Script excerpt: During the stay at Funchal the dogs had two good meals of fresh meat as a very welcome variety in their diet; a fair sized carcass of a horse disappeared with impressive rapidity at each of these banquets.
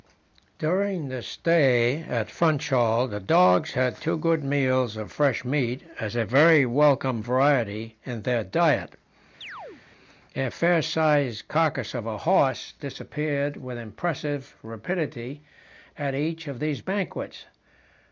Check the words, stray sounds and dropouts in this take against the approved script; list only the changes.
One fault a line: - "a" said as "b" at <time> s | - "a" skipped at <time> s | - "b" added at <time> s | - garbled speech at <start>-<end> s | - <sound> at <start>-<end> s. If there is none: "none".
- chirp at 9.4-9.8 s